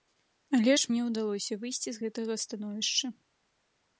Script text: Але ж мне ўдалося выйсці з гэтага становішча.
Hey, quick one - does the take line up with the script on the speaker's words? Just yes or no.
yes